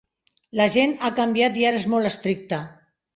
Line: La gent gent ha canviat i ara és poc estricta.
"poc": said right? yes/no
no